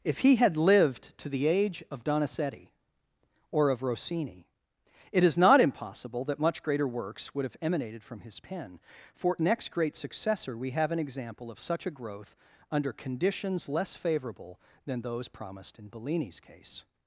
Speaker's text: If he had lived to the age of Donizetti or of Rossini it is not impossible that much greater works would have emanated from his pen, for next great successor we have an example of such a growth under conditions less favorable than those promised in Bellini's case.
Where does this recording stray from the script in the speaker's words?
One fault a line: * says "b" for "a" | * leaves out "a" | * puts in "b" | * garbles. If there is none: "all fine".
all fine